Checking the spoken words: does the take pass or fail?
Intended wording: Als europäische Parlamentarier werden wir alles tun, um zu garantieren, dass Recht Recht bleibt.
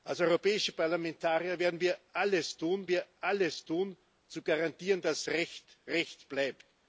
fail